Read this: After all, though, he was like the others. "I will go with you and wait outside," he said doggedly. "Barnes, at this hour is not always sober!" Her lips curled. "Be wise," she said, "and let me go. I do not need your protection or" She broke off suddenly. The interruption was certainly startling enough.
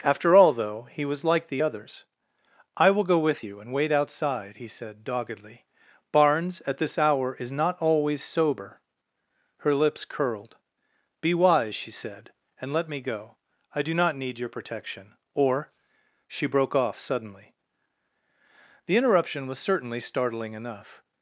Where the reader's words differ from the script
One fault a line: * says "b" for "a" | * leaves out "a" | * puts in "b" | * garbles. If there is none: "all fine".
all fine